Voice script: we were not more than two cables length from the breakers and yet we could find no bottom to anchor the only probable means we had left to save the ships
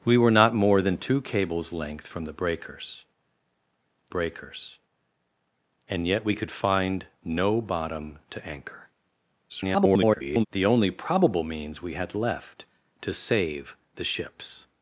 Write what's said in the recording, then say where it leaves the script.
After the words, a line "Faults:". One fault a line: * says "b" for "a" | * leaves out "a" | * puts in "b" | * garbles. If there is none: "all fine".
we were not more than two cables length from the breakers breakers and yet we could find no bottom to anchor [garbled] the only probable means we had left to save the ships
Faults:
* puts in "breakers"
* garbles